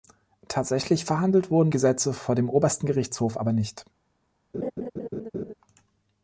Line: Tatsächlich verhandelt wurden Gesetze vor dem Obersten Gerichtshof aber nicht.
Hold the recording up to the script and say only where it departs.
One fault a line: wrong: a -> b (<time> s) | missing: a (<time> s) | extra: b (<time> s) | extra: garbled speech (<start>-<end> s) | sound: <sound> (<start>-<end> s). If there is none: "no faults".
sound: laugh (4.5-5.5 s)